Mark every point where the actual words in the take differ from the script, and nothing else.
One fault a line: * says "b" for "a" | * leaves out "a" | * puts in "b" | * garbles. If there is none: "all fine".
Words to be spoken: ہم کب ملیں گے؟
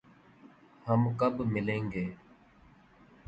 all fine